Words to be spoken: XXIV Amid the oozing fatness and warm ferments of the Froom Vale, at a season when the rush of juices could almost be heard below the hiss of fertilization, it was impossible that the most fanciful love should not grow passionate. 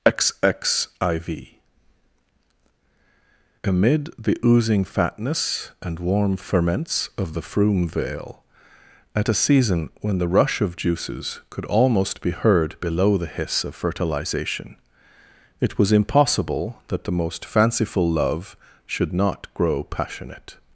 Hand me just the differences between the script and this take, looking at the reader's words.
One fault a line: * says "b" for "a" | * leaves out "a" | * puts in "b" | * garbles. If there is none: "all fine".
all fine